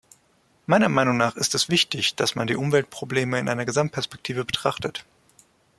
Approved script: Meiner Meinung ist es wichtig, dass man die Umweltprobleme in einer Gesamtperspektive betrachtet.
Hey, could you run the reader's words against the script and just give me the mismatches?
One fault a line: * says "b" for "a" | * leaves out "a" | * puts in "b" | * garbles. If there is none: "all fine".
* puts in "nach"